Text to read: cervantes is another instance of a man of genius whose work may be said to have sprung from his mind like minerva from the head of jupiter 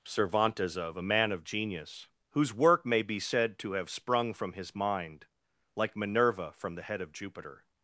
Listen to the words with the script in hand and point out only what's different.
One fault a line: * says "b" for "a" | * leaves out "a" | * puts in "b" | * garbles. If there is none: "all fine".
* leaves out "is another instance"